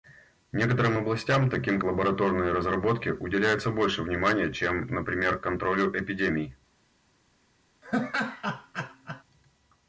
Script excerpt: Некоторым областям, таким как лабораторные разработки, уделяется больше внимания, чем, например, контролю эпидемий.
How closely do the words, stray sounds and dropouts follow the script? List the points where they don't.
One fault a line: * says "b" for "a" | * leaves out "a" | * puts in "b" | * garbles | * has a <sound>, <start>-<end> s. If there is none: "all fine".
* leaves out "как"
* has a laugh, 7.8-9.2 s